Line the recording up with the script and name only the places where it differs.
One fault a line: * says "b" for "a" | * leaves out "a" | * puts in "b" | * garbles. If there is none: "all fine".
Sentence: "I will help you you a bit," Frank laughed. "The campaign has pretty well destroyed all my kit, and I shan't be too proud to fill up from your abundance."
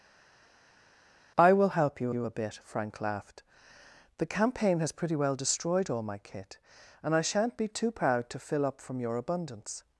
all fine